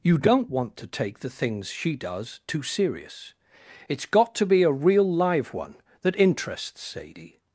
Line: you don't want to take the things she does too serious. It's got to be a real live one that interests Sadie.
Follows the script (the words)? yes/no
yes